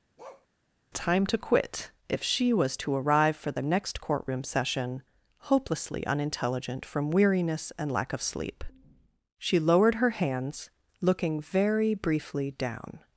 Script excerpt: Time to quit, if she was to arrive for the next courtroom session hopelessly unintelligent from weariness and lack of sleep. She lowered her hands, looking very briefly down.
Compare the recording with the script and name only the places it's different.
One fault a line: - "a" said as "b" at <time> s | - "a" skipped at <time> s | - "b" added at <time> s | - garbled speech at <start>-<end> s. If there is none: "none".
none